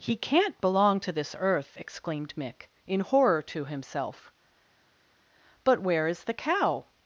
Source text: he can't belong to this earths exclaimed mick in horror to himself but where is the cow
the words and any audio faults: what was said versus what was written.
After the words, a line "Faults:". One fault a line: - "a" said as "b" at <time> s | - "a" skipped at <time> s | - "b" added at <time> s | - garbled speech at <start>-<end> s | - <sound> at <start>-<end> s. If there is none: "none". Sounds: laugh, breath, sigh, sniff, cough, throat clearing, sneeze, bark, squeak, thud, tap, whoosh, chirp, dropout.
he can't belong to this earth exclaimed mick in horror to himself but where is the cow
Faults:
- "earths" said as "earth" at 1.4 s